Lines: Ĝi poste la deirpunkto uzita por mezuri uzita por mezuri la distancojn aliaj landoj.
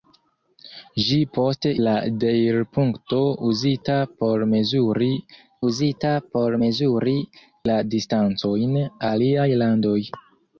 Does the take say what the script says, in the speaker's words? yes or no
yes